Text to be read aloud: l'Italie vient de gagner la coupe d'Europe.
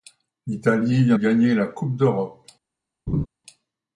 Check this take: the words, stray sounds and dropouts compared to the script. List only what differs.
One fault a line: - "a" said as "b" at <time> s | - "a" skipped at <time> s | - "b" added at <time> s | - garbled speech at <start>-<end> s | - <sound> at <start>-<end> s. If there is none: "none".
- "de" skipped at 1.2 s
- laugh at 3.1-3.3 s